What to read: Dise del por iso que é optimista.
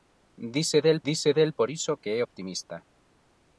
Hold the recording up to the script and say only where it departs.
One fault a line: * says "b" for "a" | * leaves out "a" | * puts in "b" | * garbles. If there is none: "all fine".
* puts in "dise del"